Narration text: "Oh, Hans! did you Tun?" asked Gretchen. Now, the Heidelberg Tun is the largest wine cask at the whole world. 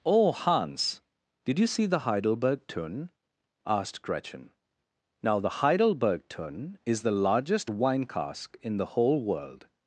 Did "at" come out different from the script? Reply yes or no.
yes